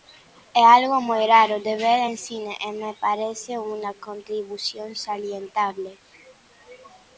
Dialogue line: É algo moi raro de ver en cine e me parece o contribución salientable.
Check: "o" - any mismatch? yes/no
yes